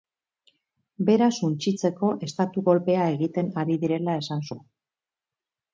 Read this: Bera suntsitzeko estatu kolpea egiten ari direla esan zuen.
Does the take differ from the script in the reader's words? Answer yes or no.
no